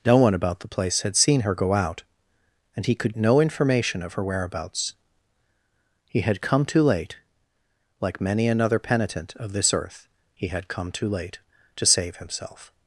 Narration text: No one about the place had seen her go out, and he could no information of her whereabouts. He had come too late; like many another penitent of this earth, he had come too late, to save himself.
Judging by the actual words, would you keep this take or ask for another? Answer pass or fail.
pass